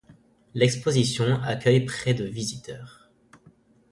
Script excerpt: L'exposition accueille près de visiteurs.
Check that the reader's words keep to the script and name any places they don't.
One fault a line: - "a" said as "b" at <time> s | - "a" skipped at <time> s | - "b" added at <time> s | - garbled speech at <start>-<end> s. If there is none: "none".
none